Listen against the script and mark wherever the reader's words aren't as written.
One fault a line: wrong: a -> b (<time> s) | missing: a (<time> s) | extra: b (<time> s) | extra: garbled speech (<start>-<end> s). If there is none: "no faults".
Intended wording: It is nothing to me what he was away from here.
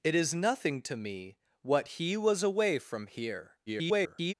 extra: garbled speech (3.7-4.3 s)